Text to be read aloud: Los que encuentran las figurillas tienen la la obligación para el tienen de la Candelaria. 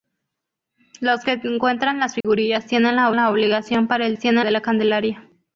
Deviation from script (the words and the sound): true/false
true